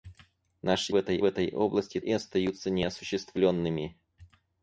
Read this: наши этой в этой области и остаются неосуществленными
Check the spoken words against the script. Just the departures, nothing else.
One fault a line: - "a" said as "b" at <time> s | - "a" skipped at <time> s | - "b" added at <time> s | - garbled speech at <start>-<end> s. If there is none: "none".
none